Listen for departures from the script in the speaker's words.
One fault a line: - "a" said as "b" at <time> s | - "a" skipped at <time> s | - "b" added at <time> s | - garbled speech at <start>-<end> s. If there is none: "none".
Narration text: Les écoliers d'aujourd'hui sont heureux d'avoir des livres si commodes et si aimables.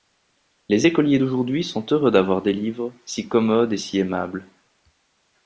none